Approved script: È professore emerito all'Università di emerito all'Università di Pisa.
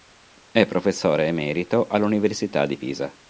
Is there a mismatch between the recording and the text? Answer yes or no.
yes